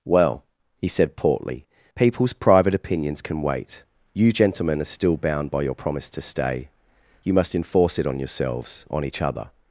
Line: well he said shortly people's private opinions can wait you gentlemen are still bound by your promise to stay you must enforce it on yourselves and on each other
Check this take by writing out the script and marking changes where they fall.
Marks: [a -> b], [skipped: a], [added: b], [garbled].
well he said [shortly -> portly] people's private opinions can wait you gentlemen are still bound by your promise to stay you must enforce it on yourselves [skipped: and] on each other